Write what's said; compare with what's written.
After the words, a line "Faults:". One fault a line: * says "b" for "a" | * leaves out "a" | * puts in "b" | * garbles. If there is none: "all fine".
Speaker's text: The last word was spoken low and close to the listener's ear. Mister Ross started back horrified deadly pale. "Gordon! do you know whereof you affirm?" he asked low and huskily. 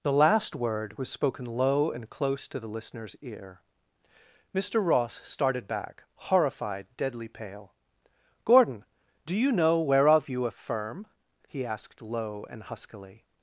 The last word was spoken low and close to the listener's ear. Mister Ross started back horrified deadly pale. "Gordon! do you know whereof you affirm?" he asked low and huskily.
Faults:
all fine